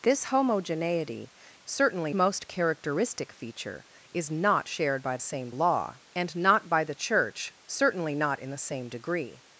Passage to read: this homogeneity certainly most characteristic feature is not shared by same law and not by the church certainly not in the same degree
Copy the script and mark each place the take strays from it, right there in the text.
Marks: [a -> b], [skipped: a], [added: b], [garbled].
this homogeneity certainly most characteristic feature is not shared by same law and not by the church certainly not in the same degree